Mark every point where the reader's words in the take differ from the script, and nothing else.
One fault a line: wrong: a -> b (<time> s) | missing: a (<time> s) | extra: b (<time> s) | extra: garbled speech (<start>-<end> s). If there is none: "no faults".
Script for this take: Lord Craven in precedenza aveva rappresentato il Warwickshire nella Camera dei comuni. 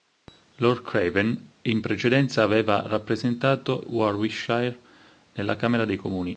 missing: il (3.8 s)